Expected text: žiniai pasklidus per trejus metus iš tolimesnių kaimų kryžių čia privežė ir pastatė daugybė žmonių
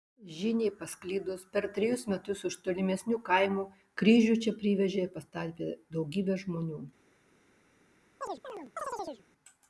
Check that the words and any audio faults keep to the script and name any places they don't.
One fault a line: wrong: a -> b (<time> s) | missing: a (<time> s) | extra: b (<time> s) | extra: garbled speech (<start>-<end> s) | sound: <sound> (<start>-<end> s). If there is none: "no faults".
sound: chirp (8.2-9.2 s)